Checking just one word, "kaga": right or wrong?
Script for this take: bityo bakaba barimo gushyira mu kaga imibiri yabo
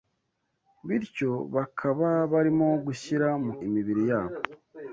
wrong